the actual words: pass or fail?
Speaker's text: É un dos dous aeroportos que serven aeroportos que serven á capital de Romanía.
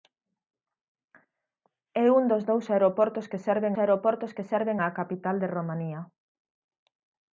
pass